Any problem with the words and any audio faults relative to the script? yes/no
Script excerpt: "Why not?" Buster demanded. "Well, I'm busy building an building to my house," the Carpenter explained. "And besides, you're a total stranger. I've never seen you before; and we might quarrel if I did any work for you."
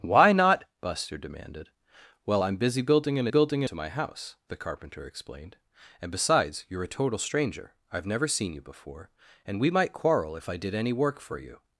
no